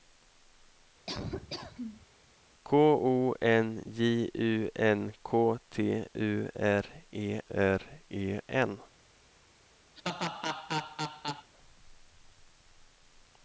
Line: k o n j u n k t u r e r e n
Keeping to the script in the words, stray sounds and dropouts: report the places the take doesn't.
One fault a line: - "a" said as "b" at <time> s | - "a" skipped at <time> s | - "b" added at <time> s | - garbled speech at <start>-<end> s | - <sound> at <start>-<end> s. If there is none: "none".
- laugh at 1.1-2.1 s
- laugh at 10.0-11.5 s